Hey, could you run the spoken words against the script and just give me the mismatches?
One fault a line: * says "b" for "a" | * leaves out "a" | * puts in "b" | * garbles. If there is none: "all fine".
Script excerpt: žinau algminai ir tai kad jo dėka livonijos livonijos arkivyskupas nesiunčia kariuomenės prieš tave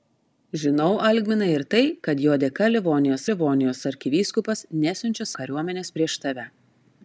all fine